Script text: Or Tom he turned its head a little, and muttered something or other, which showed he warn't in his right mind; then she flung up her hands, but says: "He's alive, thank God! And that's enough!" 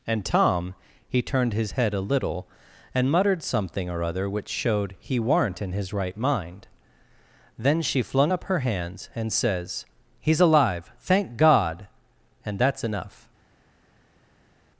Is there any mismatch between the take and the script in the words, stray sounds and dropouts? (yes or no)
yes